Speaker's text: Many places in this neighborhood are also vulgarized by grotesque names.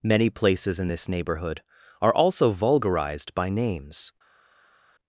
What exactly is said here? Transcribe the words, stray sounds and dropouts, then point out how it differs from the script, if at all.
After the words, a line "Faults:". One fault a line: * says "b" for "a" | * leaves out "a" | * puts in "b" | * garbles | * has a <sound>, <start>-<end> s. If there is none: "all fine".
Many places in this neighborhood are also vulgarized by names.
Faults:
* leaves out "grotesque"